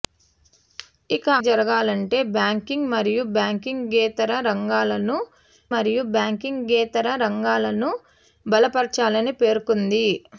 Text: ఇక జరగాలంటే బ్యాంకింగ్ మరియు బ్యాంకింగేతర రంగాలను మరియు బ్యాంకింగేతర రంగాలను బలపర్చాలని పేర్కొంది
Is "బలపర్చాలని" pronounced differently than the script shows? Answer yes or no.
no